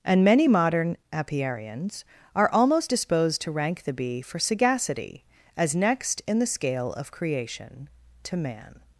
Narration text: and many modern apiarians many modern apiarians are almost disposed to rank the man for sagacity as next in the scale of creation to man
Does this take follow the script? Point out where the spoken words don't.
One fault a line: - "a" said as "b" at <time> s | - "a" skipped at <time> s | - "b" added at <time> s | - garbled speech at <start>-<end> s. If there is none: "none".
- "many modern apiarians" skipped at 2.0 s
- "man" said as "bee" at 3.9 s